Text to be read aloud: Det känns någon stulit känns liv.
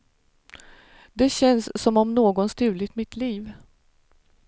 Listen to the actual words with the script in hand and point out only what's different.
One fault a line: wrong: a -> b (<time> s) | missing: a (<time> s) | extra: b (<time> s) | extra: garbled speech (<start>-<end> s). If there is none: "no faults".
extra: som om (1.8 s)
wrong: känns -> mitt (2.9 s)